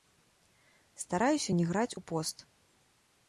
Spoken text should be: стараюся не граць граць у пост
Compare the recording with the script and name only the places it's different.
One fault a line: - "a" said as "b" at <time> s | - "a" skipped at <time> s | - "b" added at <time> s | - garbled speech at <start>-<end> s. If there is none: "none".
- "граць" skipped at 2.0 s